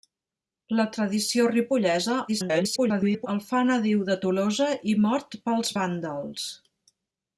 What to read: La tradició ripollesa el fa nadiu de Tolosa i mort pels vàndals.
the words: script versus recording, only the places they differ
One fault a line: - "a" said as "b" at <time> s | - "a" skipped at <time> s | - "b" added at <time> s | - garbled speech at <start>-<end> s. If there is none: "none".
- garbled speech at 2.3-3.3 s